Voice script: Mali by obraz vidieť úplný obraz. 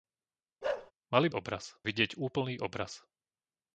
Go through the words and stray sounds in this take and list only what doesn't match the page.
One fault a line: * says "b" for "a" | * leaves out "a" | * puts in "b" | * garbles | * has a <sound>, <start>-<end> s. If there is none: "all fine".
* has a bark, 0.6-0.9 s